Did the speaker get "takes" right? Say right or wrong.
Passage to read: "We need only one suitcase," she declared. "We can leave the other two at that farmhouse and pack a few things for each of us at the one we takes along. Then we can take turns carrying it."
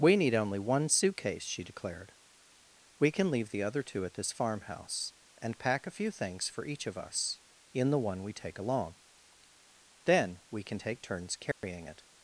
wrong